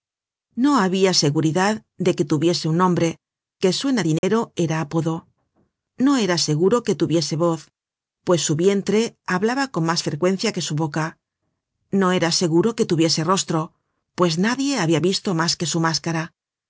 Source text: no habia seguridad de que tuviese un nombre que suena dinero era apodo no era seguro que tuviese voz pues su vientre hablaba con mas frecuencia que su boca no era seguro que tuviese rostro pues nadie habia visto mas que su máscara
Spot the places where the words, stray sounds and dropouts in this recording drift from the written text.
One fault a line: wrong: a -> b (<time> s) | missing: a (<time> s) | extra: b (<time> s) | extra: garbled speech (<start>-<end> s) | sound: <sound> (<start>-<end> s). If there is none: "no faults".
sound: dropout (4.2-4.2 s)